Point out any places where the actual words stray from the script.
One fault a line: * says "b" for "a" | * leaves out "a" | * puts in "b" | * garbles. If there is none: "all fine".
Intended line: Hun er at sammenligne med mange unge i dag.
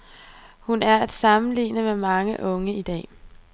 all fine